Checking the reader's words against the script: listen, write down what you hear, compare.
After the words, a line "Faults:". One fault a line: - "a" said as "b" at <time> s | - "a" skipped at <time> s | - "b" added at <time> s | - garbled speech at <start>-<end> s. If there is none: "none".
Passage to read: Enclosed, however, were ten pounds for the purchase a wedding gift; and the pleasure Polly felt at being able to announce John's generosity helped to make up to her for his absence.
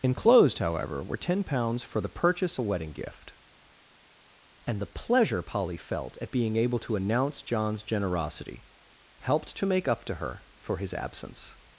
Enclosed, however, were ten pounds for the purchase a wedding gift; and the pleasure Polly felt at being able to announce John's generosity helped to make up to her for his absence.
Faults:
none